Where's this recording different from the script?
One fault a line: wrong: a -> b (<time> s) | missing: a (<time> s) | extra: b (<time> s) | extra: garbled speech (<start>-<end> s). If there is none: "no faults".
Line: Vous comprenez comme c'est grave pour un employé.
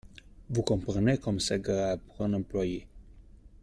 no faults